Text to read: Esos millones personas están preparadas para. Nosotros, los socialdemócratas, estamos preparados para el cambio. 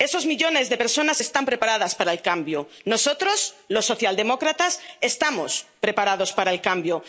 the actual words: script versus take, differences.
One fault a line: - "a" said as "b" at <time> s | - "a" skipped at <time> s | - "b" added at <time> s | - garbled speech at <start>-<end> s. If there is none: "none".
- "de" added at 0.7 s
- "el cambio" added at 2.1 s